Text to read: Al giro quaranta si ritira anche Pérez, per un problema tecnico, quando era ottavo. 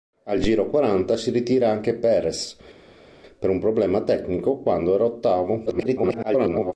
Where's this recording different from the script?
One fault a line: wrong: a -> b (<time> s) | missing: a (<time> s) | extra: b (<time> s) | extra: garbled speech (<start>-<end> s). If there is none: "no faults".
extra: garbled speech (5.7-6.7 s)